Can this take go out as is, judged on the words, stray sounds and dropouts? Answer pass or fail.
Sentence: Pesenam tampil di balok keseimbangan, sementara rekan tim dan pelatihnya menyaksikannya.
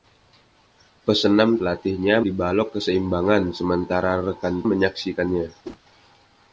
fail